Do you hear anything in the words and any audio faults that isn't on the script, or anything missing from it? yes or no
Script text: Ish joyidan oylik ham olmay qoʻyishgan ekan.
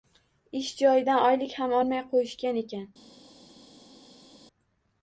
no